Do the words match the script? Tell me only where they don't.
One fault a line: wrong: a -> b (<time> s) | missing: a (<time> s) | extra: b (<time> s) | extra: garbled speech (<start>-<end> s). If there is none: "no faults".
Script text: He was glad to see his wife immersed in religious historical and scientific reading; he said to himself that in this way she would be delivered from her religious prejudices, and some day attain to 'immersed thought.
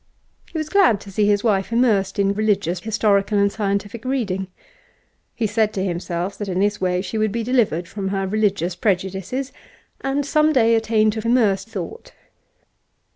no faults